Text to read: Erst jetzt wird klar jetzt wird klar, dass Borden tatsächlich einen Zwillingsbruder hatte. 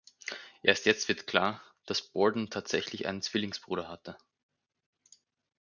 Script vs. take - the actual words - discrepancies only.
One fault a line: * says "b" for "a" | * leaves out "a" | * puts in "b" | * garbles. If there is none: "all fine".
* leaves out "jetzt wird klar"